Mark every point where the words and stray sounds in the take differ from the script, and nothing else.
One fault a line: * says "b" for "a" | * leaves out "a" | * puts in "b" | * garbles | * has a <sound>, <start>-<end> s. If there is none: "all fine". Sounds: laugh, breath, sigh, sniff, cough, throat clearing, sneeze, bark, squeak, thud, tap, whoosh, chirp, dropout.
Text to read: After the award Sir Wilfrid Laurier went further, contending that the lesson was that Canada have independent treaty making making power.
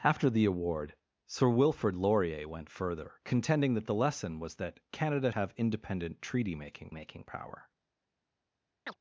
* has a chirp, 8.9-9.0 s